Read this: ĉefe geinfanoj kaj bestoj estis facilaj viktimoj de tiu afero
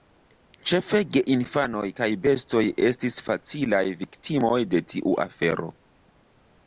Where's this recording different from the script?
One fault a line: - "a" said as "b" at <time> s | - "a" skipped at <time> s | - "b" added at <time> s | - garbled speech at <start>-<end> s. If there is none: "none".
none